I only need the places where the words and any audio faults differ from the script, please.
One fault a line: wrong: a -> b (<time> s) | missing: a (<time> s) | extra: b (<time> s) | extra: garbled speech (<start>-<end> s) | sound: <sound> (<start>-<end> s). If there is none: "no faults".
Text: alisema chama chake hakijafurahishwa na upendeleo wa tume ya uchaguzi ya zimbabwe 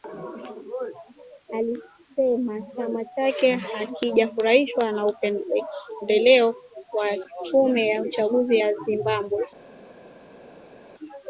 no faults